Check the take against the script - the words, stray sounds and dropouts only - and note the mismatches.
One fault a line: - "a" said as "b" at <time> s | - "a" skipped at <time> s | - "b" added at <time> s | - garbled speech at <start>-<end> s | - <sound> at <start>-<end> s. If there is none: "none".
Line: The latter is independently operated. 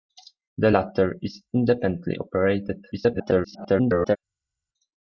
- garbled speech at 2.9-4.2 s